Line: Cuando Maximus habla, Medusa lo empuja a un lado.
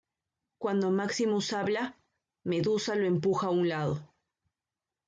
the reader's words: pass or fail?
pass